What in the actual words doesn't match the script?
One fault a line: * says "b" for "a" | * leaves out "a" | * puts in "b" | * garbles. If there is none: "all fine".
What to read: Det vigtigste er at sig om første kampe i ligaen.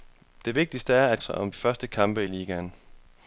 all fine